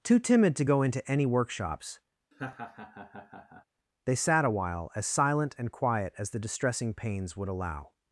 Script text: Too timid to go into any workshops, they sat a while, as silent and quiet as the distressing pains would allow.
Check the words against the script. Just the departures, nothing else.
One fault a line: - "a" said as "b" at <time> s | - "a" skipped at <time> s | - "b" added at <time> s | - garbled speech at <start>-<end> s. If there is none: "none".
none